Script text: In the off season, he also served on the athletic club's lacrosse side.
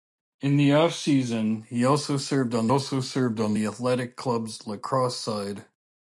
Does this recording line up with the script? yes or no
no